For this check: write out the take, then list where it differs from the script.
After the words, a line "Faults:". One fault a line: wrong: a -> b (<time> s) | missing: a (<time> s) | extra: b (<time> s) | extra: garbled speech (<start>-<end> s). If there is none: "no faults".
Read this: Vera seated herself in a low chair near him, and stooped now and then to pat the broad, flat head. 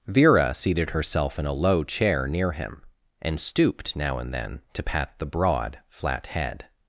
Vera seated herself in a low chair near him, and stooped now and then to pat the broad, flat head.
Faults:
no faults